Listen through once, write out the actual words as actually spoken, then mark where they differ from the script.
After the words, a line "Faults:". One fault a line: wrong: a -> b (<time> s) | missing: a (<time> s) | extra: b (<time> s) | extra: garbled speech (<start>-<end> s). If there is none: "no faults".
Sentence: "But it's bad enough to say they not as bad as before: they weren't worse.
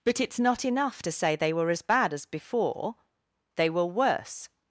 "But it's not enough to say they were as bad as before: they were worse.
Faults:
wrong: bad -> not (0.4 s)
wrong: not -> were (1.5 s)
wrong: weren't -> were (3.7 s)